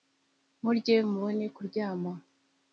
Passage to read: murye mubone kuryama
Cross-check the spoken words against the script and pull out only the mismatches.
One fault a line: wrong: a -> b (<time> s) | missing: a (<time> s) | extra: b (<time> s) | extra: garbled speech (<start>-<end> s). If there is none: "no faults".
no faults